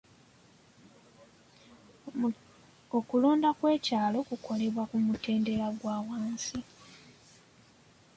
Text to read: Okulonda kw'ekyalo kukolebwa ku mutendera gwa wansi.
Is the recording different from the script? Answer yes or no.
no